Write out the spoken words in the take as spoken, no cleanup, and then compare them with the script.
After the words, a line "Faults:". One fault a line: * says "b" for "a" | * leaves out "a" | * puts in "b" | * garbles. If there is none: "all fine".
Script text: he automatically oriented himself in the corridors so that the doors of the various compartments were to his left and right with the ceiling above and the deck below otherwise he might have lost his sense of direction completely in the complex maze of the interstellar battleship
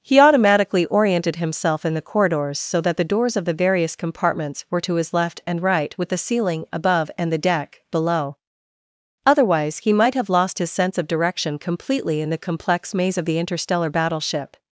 he automatically oriented himself in the corridors so that the doors of the various compartments were to his left and right with the ceiling above and the deck below otherwise he might have lost his sense of direction completely in the complex maze of the interstellar battleship
Faults:
all fine